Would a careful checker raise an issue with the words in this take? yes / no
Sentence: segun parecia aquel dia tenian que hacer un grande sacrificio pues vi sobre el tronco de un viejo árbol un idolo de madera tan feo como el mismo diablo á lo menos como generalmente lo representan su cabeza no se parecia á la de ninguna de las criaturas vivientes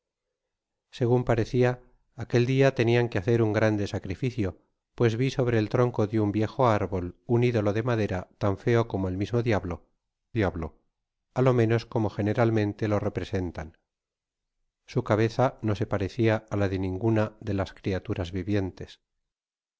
yes